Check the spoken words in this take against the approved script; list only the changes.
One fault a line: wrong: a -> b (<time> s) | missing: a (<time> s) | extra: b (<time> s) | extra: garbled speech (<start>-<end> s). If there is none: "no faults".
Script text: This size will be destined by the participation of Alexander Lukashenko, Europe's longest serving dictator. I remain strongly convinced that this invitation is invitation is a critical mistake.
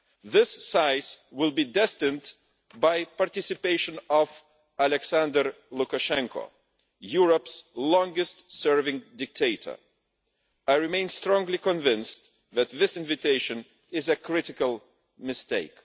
missing: invitation is (14.1 s)